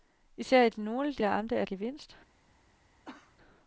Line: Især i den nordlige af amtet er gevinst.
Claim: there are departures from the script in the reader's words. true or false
false